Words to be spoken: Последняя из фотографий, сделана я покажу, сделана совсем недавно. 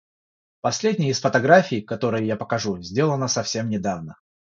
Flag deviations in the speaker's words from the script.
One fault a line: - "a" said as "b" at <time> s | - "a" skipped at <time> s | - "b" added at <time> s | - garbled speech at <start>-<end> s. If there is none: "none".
- "сделана" said as "которые" at 1.8 s